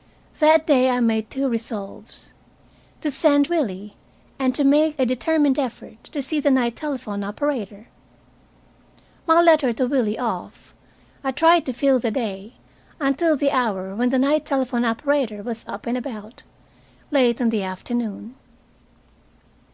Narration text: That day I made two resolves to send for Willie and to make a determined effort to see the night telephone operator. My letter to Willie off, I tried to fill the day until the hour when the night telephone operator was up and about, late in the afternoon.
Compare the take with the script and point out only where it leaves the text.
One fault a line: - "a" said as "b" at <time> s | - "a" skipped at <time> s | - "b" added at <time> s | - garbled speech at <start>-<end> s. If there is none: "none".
- "for" skipped at 3.5 s